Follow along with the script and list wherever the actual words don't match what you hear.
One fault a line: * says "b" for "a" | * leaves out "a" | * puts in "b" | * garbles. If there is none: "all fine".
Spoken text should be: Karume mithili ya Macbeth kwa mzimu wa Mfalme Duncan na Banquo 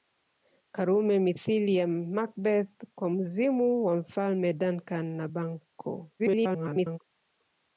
* garbles